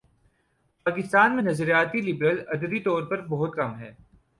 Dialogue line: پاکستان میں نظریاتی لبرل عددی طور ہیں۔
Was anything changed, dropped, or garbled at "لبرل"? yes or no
no